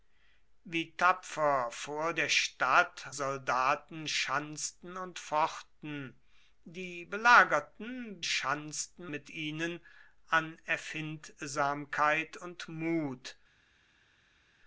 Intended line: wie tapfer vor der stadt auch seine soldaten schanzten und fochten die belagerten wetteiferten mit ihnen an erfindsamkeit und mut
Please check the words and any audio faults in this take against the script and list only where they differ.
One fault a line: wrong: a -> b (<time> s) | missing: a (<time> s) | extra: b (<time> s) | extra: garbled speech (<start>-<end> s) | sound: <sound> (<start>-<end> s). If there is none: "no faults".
missing: auch seine (3.0 s)
wrong: wetteiferten -> schanzten (8.2 s)